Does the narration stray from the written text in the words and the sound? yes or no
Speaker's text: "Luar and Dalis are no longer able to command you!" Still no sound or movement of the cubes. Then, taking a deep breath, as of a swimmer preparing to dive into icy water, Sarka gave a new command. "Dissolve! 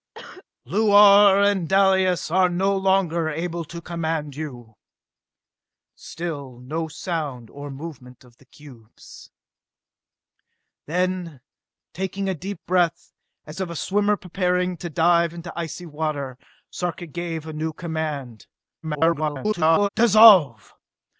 yes